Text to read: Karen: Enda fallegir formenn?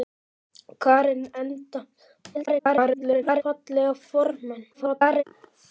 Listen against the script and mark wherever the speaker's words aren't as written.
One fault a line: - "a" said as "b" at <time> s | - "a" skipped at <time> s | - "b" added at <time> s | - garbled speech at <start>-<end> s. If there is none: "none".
- garbled speech at 2.3-3.4 s
- garbled speech at 4.7-5.2 s